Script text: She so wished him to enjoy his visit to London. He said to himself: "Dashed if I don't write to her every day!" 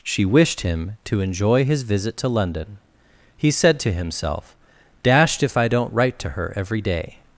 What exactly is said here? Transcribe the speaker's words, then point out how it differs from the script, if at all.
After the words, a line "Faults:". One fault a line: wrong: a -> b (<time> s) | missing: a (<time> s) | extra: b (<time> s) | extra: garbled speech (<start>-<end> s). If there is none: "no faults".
She wished him to enjoy his visit to London. He said to himself: "Dashed if I don't write to her every day!"
Faults:
missing: so (0.2 s)